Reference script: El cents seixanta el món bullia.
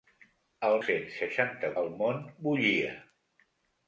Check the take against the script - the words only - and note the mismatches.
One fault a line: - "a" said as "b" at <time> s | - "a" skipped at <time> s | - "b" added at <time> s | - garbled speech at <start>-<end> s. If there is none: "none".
none